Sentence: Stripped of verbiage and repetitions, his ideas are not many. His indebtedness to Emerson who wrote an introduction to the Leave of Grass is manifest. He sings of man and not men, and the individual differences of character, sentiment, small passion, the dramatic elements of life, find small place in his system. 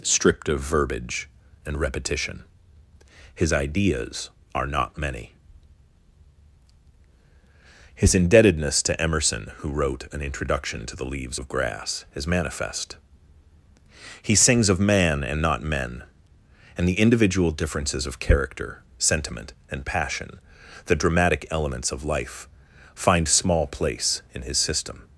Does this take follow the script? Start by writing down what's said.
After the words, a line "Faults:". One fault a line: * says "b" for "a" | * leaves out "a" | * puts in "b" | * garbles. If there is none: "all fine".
Stripped of verbiage and repetition, his ideas are not many. His indebtedness to Emerson who wrote an introduction to the Leaves of Grass is manifest. He sings of man and not men, and the individual differences of character, sentiment, and passion, the dramatic elements of life, find small place in his system.
Faults:
* says "repetition" for "repetitions"
* says "Leaves" for "Leave"
* says "and" for "small"